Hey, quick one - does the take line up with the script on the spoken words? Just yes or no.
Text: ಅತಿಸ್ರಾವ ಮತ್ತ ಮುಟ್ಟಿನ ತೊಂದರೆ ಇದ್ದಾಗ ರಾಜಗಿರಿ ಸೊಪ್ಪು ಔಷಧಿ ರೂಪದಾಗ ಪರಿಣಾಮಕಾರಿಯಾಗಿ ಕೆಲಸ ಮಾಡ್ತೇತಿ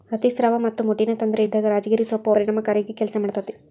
no